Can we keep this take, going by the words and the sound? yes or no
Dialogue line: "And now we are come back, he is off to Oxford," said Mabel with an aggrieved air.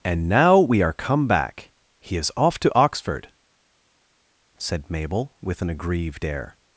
yes